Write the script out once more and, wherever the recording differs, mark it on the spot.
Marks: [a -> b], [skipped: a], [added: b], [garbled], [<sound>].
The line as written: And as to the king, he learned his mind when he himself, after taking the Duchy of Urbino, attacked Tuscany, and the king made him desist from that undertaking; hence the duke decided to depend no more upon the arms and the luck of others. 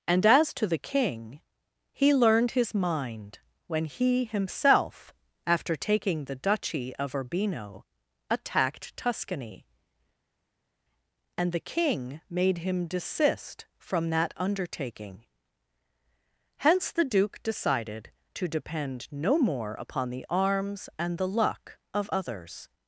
And as to the king, he learned his mind when he himself, after taking the Duchy of Urbino, attacked Tuscany, and the king made him desist from that undertaking; hence the duke decided to depend no more upon the arms and the luck of others.